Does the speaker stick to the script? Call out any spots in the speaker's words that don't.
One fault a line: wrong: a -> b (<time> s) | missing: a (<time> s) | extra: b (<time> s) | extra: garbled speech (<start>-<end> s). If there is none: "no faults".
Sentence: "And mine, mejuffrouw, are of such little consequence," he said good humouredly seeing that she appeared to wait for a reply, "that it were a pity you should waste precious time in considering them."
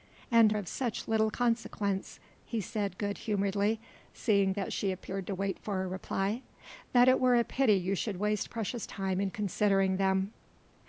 missing: mine mejuffrouw are (0.6 s)